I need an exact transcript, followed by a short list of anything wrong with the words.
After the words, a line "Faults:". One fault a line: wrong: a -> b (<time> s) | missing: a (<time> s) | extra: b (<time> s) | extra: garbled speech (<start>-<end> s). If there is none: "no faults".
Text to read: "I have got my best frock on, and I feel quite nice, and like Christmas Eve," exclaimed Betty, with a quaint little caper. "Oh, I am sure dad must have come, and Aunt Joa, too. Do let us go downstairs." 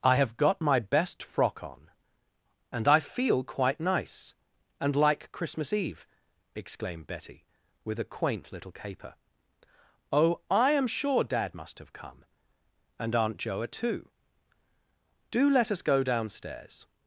"I have got my best frock on, and I feel quite nice, and like Christmas Eve," exclaimed Betty, with a quaint little caper. "Oh, I am sure dad must have come, and Aunt Joa, too. Do let us go downstairs."
Faults:
no faults